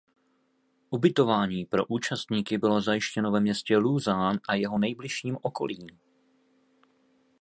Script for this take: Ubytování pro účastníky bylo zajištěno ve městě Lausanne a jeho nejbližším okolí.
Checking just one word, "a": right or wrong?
right